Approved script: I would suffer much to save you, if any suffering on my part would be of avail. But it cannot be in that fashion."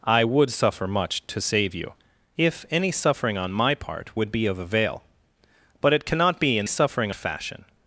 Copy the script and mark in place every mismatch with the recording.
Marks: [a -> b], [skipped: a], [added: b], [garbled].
I would suffer much to save you, if any suffering on my part would be of avail. But it cannot be in [that -> suffering] fashion."